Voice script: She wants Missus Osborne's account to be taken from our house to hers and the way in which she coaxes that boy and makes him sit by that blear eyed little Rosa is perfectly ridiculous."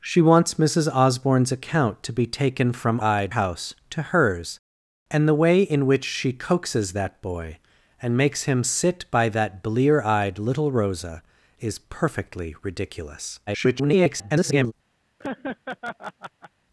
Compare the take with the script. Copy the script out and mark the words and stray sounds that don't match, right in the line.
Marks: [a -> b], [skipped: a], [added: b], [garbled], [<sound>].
She wants Missus Osborne's account to be taken from [our -> eyed] house to hers and the way in which she coaxes that boy and makes him sit by that blear eyed little Rosa is perfectly ridiculous." [garbled] [laugh]